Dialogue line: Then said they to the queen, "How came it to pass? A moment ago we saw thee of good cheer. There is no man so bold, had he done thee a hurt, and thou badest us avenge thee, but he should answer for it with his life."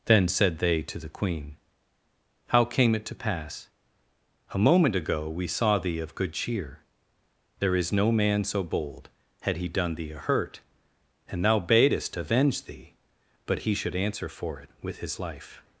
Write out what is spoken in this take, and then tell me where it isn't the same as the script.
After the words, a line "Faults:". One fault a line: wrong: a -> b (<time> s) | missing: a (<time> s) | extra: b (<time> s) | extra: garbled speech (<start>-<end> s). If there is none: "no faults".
Then said they to the queen, "How came it to pass? A moment ago we saw thee of good cheer. There is no man so bold, had he done thee a hurt, and thou badest avenge thee, but he should answer for it with his life."
Faults:
missing: us (12.2 s)